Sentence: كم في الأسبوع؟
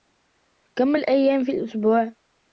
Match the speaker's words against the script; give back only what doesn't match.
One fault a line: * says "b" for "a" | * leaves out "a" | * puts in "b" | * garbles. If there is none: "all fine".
* puts in "الأيام"